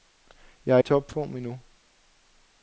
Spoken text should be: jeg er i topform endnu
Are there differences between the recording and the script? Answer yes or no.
no